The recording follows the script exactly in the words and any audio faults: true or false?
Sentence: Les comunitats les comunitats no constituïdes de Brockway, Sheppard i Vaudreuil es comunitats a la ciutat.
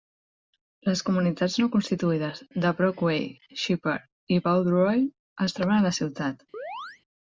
false